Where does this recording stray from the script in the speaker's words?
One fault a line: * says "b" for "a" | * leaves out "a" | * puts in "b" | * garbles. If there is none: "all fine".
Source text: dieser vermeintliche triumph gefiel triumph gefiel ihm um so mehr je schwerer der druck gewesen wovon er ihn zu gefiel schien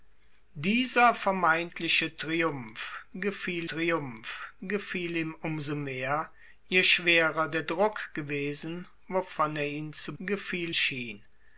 all fine